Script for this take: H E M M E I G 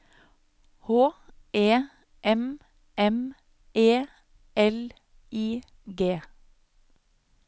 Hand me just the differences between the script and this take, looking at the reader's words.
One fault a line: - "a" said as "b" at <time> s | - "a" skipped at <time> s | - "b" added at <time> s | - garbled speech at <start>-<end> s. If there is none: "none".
- "L" added at 4.6 s